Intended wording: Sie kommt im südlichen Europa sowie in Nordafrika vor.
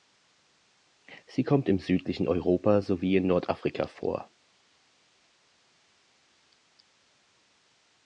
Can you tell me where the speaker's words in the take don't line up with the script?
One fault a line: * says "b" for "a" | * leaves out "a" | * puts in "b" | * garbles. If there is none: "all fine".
all fine